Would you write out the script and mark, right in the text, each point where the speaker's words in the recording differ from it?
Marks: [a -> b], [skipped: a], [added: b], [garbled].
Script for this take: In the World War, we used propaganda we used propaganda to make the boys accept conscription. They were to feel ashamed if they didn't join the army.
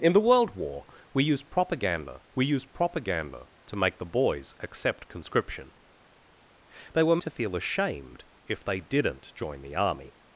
In the World War, we used propaganda we used propaganda to make the boys accept conscription. They were to feel ashamed if they didn't join the army.